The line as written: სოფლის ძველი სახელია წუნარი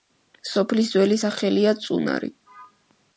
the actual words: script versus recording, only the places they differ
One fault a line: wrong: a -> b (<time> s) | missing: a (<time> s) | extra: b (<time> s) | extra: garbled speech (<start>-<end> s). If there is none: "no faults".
no faults